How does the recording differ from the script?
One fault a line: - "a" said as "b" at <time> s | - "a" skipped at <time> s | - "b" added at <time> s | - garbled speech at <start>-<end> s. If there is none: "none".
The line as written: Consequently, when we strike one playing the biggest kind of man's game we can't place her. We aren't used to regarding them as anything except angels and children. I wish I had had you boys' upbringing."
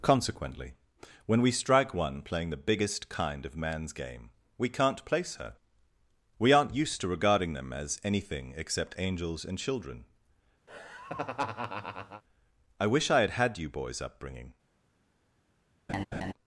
none